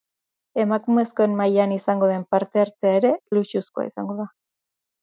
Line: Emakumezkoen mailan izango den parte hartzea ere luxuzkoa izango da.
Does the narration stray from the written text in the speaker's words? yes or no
no